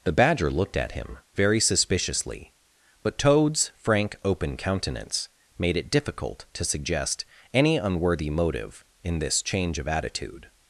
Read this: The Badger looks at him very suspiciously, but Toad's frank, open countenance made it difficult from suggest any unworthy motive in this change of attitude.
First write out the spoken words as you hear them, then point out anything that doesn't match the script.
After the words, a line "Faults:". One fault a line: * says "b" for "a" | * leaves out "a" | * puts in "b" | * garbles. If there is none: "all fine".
The Badger looked at him very suspiciously, but Toad's frank, open countenance made it difficult to suggest any unworthy motive in this change of attitude.
Faults:
* says "looked" for "looks"
* says "to" for "from"